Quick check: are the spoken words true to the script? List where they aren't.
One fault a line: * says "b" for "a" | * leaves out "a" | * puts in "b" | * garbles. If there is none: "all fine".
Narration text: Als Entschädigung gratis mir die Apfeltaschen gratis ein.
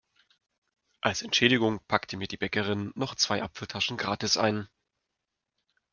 * says "packte" for "gratis"
* puts in "Bäckerin noch zwei"